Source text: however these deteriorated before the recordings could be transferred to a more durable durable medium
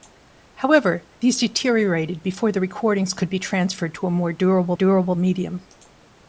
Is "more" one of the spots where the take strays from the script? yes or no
no